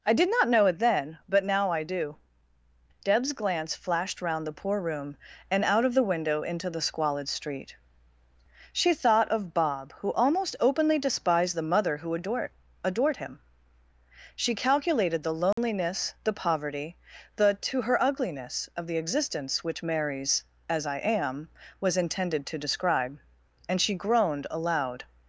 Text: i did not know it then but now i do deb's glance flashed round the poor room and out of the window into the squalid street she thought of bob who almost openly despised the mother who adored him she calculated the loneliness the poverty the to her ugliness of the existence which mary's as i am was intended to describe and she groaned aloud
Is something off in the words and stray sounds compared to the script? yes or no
yes